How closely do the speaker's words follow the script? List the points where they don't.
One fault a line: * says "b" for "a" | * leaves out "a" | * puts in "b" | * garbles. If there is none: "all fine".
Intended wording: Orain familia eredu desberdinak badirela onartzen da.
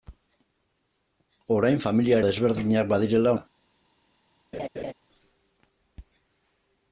* leaves out "eredu"
* leaves out "onartzen"